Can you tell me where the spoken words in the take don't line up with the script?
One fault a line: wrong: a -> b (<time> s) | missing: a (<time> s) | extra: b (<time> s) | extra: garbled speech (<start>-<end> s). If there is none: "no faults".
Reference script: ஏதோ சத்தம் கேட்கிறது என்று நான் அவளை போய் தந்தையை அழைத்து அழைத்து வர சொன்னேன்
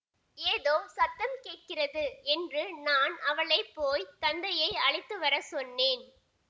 missing: அழைத்து (5.2 s)